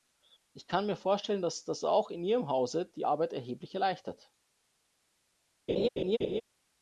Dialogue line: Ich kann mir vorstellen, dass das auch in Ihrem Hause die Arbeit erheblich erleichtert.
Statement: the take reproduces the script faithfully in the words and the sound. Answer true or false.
false